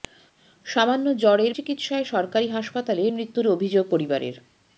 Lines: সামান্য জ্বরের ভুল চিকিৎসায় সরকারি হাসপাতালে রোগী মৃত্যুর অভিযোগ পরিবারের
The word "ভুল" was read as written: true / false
false